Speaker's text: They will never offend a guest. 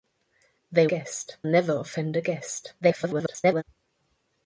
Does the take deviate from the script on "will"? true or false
true